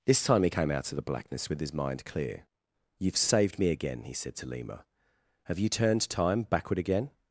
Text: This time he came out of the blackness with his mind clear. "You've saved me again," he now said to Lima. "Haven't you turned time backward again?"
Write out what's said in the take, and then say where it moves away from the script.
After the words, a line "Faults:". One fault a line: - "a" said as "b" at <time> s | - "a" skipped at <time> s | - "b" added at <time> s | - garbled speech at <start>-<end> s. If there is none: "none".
This time he came out of the blackness with his mind clear. "You've saved me again," he said to Lima. "Have you turned time backward again?"
Faults:
- "now" skipped at 4.1 s
- "Haven't" said as "Have" at 5.4 s